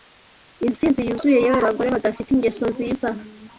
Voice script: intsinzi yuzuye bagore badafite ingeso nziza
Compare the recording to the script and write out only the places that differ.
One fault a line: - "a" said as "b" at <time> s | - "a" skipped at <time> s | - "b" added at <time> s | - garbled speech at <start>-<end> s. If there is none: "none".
- "yewe" added at 1.4 s